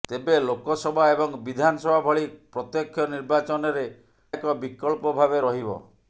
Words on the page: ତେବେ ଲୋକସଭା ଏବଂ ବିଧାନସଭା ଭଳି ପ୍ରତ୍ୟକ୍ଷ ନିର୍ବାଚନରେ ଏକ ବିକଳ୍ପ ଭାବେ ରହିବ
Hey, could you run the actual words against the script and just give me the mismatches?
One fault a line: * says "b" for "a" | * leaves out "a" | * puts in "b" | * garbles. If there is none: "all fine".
all fine